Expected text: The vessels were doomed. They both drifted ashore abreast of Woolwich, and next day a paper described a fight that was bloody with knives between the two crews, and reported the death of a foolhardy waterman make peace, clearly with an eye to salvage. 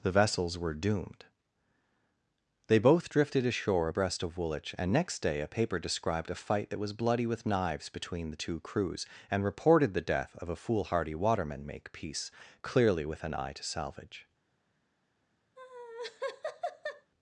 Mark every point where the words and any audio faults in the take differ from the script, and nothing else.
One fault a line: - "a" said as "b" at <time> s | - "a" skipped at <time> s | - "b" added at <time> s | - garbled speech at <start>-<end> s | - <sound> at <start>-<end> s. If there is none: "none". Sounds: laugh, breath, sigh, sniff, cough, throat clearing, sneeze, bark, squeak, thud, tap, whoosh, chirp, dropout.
- laugh at 15.6-17.1 s